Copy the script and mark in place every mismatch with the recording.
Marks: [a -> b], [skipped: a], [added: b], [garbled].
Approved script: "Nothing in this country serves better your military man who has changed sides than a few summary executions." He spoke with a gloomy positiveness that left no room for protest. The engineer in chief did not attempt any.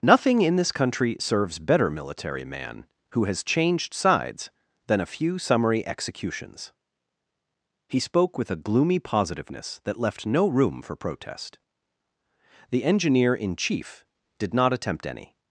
"Nothing in this country serves better [skipped: your] military man who has changed sides than a few summary executions." He spoke with a gloomy positiveness that left no room for protest. The engineer in chief did not attempt any.